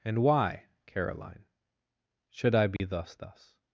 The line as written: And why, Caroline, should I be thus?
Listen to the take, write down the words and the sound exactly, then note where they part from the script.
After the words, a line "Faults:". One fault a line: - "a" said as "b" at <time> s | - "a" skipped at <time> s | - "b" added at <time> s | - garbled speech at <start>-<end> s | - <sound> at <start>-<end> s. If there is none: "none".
And why, Caroline, should I be thus thus?
Faults:
- dropout at 2.8-2.8 s
- "thus" added at 3.1 s